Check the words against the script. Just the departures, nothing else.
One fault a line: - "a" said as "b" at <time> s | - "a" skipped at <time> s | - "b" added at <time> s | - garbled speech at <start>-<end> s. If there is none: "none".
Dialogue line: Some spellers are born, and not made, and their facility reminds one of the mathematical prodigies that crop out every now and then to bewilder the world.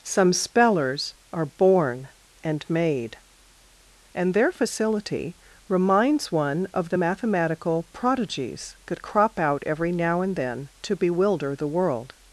- "not" skipped at 2.6 s